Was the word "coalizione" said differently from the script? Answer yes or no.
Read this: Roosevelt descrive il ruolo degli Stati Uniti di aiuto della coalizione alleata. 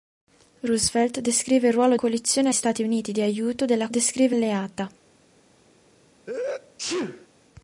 yes